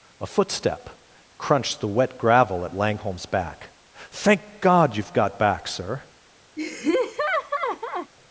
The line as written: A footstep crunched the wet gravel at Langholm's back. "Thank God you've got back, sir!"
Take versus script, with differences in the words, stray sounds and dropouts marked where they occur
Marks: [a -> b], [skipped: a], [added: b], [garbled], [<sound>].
A footstep crunched the wet gravel at Langholm's back. "Thank God you've got back, sir!" [laugh]